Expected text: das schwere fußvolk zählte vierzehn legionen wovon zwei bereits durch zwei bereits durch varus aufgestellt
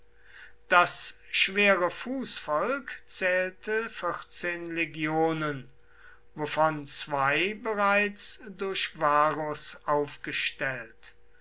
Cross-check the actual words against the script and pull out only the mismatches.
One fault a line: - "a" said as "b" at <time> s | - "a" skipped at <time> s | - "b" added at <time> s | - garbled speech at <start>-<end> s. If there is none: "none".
- "zwei bereits durch" skipped at 9.0 s